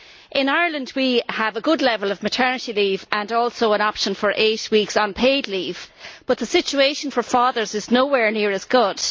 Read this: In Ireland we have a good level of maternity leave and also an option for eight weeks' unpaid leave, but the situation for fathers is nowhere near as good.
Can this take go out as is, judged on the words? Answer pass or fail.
pass